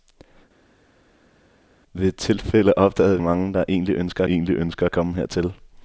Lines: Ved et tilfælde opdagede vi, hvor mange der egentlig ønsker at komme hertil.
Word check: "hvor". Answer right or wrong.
wrong